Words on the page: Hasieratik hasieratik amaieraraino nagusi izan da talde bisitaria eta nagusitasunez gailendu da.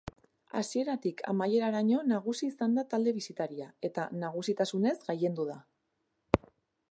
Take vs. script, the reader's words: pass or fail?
fail